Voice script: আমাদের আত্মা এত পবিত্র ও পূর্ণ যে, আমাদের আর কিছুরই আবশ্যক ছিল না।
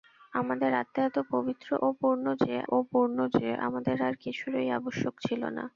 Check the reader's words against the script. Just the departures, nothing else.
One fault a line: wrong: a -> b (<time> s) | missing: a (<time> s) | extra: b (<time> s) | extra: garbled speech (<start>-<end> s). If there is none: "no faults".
extra: ও পূর্ণ যে (2.7 s)